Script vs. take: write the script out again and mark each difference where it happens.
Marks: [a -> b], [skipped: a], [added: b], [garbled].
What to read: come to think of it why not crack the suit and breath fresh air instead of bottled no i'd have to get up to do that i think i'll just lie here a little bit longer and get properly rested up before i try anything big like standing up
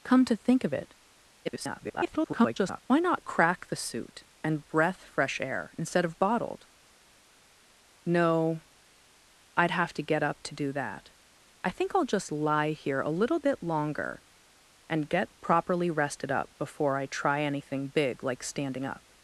come to think of it [garbled] why not crack the suit and breath fresh air instead of bottled no i'd have to get up to do that i think i'll just lie here a little bit longer and get properly rested up before i try anything big like standing up